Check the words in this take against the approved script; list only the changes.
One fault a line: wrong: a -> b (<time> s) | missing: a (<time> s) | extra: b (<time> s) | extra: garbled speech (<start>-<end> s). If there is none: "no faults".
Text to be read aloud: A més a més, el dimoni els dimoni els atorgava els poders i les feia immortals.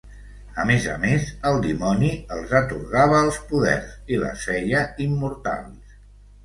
missing: dimoni els (2.5 s)